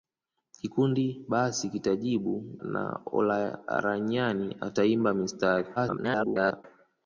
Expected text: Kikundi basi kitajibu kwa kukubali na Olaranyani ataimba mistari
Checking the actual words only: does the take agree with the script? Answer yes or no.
no